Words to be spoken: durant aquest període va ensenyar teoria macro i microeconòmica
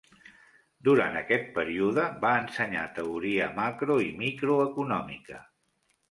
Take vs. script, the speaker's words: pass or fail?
pass